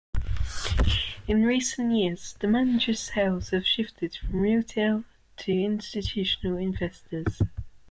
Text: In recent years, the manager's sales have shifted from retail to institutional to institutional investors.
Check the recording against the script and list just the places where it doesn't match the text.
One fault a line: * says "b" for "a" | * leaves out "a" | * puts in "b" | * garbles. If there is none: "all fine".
* leaves out "to institutional"